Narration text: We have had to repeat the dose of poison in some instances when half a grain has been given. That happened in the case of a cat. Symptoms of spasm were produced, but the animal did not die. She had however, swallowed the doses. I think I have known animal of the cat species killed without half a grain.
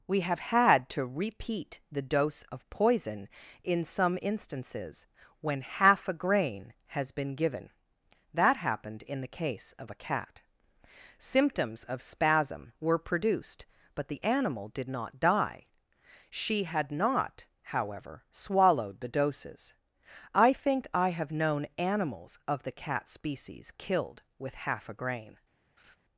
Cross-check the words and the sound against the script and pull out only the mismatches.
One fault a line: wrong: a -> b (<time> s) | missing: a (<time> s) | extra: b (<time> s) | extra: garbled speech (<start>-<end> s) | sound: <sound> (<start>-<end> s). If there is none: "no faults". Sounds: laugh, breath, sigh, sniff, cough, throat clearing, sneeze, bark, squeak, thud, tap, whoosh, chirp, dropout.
extra: not (16.9 s)
wrong: animal -> animals (21.8 s)
wrong: without -> with (24.4 s)
sound: laugh (25.8-26.0 s)